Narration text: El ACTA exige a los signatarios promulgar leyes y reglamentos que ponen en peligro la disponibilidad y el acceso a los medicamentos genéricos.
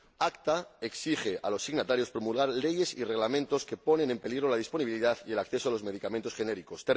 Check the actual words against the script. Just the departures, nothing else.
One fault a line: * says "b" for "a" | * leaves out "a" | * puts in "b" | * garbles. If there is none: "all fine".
all fine